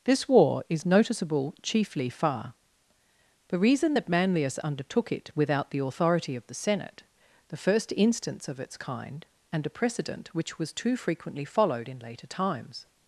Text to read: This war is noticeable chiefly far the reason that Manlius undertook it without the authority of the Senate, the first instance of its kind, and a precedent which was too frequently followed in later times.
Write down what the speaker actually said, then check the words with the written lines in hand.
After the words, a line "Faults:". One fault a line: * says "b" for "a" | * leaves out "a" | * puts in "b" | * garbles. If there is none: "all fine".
This war is noticeable chiefly far the reason that Manlius undertook it without the authority of the Senate, the first instance of its kind, and a precedent which was too frequently followed in later times.
Faults:
all fine